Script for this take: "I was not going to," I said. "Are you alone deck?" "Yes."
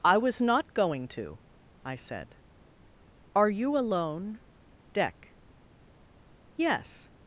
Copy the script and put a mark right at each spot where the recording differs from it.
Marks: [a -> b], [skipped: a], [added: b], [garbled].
"I was not going to," I said. "Are you alone deck?" "Yes."